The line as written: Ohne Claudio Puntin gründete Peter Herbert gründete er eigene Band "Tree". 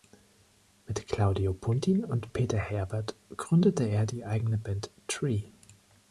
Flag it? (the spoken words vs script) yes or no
yes